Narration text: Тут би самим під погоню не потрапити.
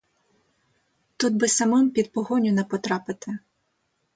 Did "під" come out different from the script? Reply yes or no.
no